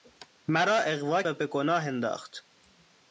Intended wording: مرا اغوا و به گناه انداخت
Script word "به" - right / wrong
right